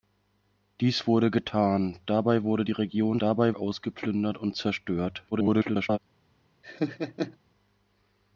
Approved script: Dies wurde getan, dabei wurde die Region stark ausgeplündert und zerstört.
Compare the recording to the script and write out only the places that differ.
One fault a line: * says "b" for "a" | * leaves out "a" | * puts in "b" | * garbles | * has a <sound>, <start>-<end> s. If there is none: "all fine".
* says "dabei" for "stark"
* garbles
* has a laugh, 6.6-7.4 s